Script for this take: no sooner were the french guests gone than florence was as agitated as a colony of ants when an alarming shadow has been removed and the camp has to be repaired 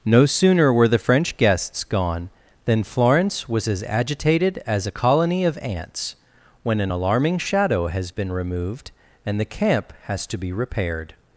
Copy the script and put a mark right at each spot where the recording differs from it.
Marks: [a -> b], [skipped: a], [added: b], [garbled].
no sooner were the french guests gone than florence was as agitated as a colony of ants when an alarming shadow has been removed and the camp has to be repaired